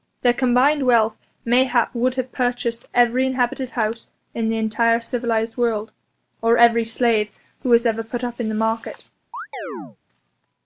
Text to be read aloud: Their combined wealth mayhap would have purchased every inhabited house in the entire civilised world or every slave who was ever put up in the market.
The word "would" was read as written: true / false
true